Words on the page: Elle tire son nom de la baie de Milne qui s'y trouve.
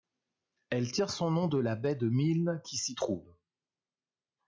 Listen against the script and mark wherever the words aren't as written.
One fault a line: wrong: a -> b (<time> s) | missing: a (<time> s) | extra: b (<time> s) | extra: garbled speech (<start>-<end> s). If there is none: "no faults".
no faults